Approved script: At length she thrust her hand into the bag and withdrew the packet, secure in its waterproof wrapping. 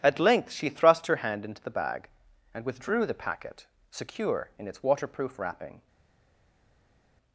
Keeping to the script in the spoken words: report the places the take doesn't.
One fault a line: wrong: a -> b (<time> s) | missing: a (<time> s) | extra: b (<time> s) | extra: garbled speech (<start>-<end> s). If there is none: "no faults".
no faults